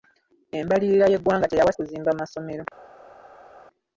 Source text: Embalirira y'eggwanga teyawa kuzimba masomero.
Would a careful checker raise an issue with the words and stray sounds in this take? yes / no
no